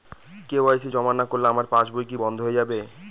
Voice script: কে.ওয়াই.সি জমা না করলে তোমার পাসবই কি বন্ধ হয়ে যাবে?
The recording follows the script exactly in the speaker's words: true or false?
false